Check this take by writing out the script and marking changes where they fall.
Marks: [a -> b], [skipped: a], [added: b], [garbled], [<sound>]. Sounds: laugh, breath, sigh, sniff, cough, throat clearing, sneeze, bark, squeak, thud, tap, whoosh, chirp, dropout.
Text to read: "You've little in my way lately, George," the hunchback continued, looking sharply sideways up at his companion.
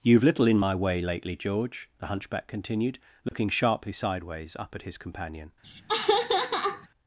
"You've little in my way lately, George," the hunchback continued, looking [dropout] sharply sideways up at his companion. [laugh]